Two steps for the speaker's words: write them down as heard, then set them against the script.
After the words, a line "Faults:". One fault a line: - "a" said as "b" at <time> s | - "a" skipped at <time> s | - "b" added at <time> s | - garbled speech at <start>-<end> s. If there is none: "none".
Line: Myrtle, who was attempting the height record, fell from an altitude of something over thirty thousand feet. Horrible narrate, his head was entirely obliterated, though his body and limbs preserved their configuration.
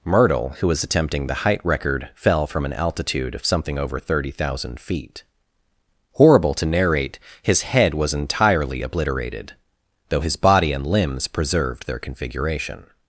Myrtle, who was attempting the height record, fell from an altitude of something over thirty thousand feet. Horrible to narrate, his head was entirely obliterated, though his body and limbs preserved their configuration.
Faults:
- "to" added at 6.5 s